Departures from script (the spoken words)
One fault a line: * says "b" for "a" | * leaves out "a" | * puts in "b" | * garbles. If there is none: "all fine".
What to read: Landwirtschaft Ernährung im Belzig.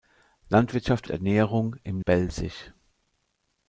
all fine